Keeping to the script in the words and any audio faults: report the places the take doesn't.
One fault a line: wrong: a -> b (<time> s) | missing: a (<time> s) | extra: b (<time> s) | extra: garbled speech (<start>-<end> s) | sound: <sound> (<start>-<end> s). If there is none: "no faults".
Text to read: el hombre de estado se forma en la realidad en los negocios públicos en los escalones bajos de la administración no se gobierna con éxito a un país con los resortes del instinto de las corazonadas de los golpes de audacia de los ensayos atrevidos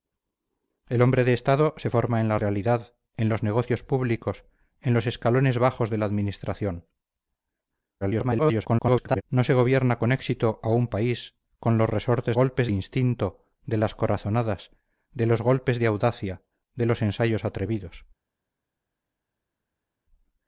extra: garbled speech (8.0-9.2 s)
wrong: del -> golpes (12.3 s)